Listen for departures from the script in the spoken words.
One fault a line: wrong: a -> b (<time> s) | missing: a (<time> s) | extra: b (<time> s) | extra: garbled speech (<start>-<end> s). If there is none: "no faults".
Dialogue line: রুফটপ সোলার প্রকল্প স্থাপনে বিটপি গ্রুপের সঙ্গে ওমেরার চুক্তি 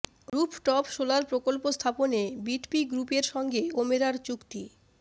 no faults